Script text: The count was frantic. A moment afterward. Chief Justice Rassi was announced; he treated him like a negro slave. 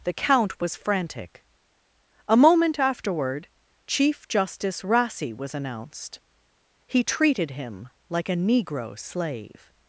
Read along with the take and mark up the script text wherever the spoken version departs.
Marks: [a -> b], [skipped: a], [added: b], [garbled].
The count was frantic. A moment afterward. Chief Justice Rassi was announced; he treated him like a negro slave.